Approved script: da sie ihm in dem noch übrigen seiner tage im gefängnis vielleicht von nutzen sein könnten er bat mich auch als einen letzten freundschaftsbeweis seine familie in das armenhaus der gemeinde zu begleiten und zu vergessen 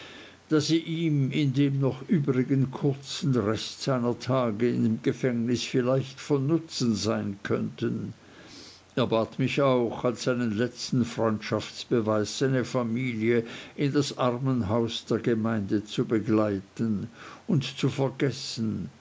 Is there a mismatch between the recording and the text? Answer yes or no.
yes